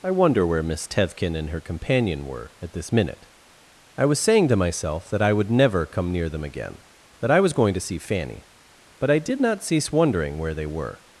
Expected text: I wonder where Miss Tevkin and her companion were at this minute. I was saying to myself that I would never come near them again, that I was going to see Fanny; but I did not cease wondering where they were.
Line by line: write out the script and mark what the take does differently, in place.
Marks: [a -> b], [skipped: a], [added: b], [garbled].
I wonder where Miss Tevkin and her companion were at this minute. I was saying to myself that I would never come near them again, that I was going to see Fanny; but I did not cease wondering where they were.